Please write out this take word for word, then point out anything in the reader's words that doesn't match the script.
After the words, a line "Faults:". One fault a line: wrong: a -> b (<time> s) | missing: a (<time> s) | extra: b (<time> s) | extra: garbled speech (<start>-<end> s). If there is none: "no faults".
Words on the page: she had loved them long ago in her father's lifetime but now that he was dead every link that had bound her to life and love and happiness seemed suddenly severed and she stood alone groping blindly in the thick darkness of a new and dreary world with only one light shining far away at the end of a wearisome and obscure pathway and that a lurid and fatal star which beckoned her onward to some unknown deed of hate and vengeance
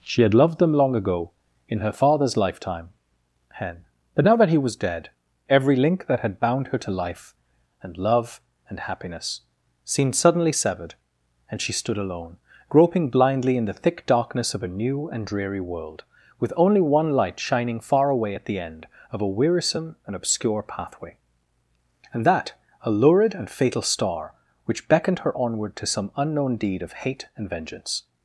she had loved them long ago in her father's lifetime hen but now that he was dead every link that had bound her to life and love and happiness seemed suddenly severed and she stood alone groping blindly in the thick darkness of a new and dreary world with only one light shining far away at the end of a wearisome and obscure pathway and that a lurid and fatal star which beckoned her onward to some unknown deed of hate and vengeance
Faults:
extra: hen (3.5 s)